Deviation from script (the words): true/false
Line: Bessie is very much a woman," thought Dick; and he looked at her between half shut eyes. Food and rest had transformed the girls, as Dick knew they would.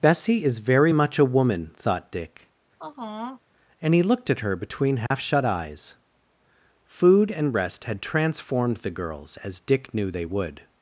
false